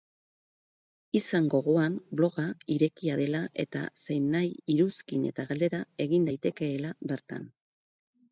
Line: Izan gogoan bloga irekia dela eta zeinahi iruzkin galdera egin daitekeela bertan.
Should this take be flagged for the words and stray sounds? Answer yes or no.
yes